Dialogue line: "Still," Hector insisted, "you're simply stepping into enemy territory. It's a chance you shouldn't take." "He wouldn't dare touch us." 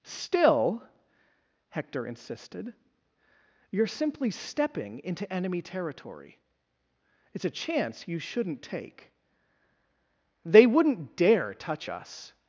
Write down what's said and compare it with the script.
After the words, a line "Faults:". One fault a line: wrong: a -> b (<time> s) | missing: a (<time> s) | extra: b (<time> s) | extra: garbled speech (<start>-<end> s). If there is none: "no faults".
"Still," Hector insisted, "you're simply stepping into enemy territory. It's a chance you shouldn't take." "They wouldn't dare touch us."
Faults:
wrong: He -> They (10.4 s)